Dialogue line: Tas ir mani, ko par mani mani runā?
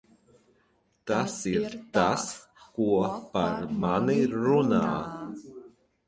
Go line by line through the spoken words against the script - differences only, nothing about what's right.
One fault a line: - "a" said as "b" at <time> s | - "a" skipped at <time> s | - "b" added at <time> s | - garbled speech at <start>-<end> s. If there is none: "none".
- "mani" said as "tas" at 2.0 s
- "mani" skipped at 4.2 s